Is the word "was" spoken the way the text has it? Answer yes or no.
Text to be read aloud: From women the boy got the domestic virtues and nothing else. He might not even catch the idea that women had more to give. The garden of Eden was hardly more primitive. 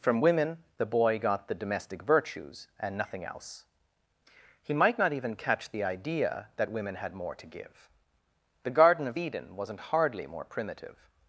no